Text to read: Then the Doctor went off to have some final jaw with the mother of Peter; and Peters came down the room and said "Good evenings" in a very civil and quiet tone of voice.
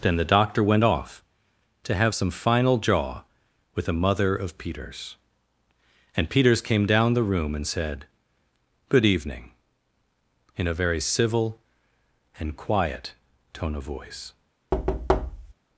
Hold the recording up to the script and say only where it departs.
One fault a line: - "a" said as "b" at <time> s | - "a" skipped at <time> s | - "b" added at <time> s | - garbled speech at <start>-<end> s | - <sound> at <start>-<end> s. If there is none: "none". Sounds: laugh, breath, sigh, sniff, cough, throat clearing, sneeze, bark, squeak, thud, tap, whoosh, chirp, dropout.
- "Peter" said as "Peters" at 4.6 s
- "evenings" said as "evening" at 9.1 s
- thud at 14.7-15.5 s